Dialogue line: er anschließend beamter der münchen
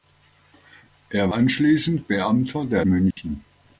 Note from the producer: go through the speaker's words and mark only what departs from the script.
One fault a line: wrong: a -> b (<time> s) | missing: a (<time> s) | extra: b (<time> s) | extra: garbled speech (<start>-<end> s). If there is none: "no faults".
no faults